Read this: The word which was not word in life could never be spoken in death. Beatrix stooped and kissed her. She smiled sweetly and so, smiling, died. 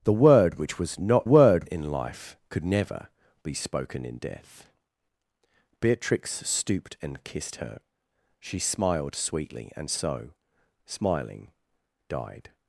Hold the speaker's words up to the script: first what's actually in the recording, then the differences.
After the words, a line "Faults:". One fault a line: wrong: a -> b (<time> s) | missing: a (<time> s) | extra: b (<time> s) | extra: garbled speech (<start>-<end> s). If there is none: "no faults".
The word which was not word in life could never be spoken in death. Beatrix stooped and kissed her. She smiled sweetly and so, smiling, died.
Faults:
no faults